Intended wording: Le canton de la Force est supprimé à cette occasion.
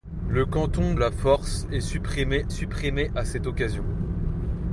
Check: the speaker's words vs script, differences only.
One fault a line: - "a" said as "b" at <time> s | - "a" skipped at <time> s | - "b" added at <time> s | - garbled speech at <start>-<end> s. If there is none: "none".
- "de" skipped at 0.9 s
- "supprimé" added at 2.5 s